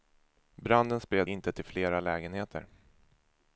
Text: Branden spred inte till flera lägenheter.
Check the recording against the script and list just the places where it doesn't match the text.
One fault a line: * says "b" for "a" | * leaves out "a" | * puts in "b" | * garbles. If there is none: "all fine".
all fine